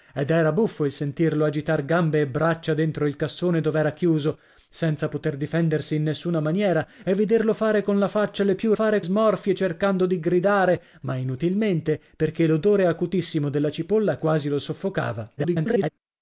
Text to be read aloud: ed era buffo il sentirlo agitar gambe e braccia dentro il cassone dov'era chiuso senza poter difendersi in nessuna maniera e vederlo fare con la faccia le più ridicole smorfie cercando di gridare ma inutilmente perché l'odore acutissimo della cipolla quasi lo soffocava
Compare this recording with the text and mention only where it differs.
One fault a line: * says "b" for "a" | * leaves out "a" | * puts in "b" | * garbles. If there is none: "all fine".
* says "fare" for "ridicole"
* garbles